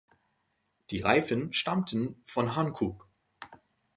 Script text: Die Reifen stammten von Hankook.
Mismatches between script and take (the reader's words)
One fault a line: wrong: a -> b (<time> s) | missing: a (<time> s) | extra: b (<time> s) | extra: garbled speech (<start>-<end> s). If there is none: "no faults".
no faults